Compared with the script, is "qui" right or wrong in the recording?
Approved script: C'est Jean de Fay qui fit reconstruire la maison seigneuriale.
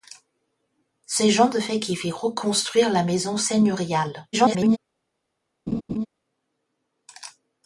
right